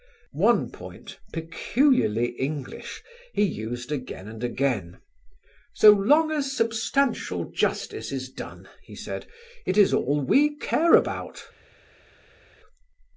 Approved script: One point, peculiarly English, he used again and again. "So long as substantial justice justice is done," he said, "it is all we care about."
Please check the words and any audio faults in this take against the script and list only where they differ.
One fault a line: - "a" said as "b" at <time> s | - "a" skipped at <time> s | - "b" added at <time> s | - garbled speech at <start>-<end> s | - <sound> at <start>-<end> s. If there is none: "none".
- "justice" skipped at 8.1 s